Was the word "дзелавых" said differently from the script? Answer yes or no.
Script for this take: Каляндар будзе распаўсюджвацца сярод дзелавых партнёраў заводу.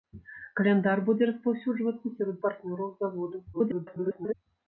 yes